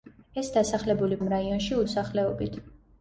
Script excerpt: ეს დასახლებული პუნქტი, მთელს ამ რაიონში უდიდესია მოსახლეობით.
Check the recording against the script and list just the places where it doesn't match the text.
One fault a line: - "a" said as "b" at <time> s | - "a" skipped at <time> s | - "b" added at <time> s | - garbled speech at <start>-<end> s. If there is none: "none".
- "პუნქტი მთელს" skipped at 1.2 s
- "უდიდესია" skipped at 1.8 s